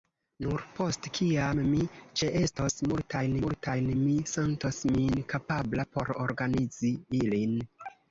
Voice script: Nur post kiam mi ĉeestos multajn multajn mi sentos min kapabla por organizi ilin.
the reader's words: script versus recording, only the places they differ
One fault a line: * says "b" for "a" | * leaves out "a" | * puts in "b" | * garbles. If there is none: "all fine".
all fine